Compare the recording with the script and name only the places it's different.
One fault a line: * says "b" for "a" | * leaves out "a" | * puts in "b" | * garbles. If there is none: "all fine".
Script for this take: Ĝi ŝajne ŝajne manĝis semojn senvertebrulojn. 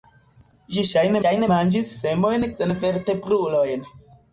all fine